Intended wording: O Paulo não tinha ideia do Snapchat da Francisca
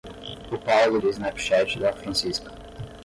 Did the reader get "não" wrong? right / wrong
wrong